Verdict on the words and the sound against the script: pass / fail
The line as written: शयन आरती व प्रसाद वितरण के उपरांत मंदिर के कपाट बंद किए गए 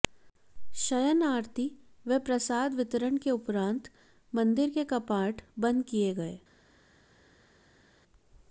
pass